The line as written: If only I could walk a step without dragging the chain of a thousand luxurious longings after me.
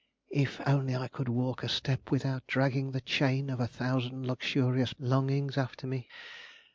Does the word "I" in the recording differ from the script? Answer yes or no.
no